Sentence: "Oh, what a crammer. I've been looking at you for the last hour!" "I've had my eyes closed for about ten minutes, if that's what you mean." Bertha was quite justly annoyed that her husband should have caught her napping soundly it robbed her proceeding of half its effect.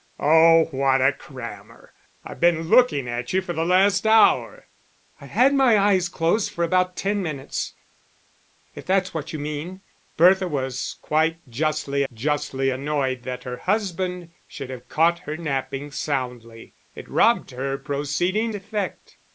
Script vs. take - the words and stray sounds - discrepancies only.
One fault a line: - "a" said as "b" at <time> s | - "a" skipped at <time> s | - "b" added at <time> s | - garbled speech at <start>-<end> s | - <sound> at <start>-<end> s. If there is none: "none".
- "justly" added at 12.1 s
- "of half its" skipped at 18.6 s